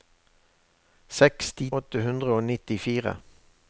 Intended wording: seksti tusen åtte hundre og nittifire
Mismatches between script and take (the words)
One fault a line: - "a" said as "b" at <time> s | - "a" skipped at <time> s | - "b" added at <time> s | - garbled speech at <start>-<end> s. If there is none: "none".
- "tusen" skipped at 1.7 s